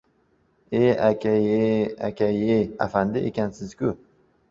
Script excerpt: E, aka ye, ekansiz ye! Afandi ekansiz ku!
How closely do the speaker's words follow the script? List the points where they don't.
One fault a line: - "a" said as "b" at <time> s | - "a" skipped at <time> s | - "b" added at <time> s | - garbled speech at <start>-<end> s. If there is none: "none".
- "ekansiz" said as "aka" at 2.1 s